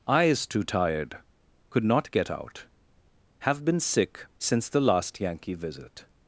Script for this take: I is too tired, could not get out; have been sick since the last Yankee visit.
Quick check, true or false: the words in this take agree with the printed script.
true